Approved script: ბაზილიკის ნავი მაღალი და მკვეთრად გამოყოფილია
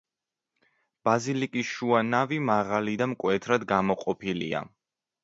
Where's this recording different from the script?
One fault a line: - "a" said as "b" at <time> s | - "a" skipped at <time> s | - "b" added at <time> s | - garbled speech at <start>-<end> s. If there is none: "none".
- "შუა" added at 1.7 s